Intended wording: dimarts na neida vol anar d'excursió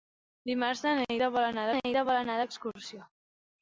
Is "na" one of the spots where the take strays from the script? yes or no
no